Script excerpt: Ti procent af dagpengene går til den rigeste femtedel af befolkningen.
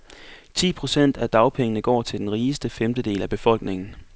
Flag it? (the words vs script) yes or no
no